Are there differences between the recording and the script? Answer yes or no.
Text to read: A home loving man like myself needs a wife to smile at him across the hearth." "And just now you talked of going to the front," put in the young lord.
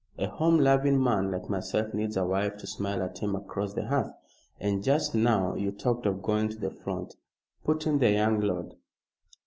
no